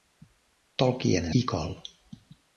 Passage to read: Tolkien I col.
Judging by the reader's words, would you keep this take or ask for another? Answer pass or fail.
pass